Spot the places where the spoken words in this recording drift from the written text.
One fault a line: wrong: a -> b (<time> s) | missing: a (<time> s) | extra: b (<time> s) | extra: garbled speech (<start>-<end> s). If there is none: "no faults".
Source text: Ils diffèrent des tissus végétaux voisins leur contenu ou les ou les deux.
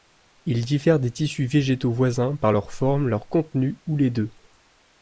extra: par (2.4 s)
wrong: contenu ou les -> forme leur contenu (2.7 s)